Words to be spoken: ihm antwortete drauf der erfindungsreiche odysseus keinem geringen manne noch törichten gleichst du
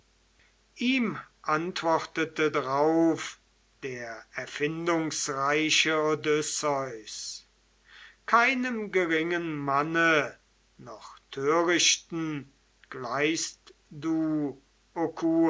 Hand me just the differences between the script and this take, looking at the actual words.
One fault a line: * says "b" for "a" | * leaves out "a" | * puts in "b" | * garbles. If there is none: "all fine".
all fine